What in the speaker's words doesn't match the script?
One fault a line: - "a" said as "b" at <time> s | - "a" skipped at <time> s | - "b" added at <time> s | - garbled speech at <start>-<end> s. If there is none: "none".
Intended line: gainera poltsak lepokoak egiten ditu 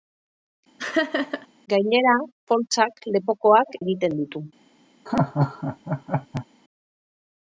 none